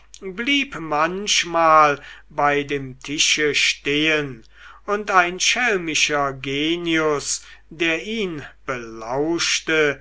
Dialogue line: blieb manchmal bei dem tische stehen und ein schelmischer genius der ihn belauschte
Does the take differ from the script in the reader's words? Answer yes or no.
no